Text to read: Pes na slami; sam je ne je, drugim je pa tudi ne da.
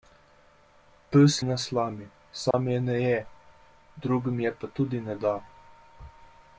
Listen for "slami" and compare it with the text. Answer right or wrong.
right